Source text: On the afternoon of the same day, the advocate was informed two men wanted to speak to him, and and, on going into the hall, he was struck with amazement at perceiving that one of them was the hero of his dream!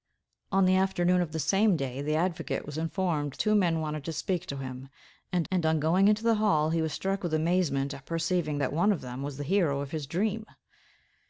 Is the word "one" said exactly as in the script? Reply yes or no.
yes